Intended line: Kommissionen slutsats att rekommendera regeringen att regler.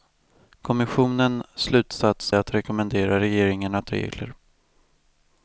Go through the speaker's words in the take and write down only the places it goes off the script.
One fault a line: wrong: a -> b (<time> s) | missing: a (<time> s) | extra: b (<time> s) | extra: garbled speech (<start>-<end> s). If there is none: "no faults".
no faults